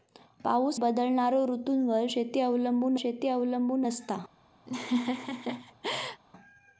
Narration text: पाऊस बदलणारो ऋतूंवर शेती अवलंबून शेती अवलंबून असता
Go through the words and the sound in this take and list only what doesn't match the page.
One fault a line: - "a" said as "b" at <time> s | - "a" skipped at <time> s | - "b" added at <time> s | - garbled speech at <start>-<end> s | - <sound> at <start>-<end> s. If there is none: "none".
- laugh at 4.7-6.2 s